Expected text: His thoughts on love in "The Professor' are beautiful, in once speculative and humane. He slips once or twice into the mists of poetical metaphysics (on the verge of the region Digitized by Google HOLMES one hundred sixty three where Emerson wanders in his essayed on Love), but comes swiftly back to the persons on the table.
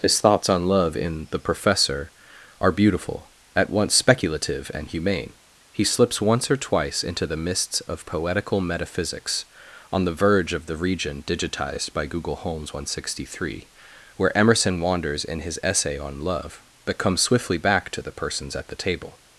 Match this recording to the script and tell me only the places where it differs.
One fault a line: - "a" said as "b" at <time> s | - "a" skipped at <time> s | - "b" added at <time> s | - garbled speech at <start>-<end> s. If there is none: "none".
- "in" said as "at" at 3.5 s
- "essayed" said as "essay" at 15.6 s
- "on" said as "at" at 18.5 s